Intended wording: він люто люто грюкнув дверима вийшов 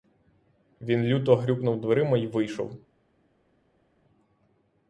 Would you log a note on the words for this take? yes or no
yes